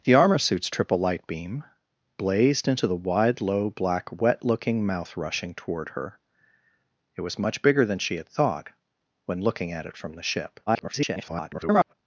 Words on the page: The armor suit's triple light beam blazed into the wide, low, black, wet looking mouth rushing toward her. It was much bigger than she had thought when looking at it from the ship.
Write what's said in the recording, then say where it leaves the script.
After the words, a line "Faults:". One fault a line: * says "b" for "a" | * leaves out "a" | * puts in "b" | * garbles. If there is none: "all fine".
The armor suit's triple light beam blazed into the wide, low, black, wet looking mouth rushing toward her. It was much bigger than she had thought when looking at it from the ship. [garbled]
Faults:
* garbles